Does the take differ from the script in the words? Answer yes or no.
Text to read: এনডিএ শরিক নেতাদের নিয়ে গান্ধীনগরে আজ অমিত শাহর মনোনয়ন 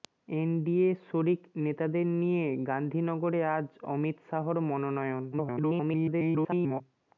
yes